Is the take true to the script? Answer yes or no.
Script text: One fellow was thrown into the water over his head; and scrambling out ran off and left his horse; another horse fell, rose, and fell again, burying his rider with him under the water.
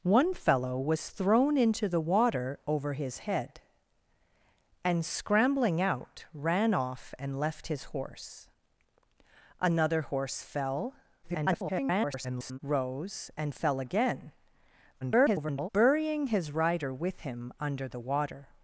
no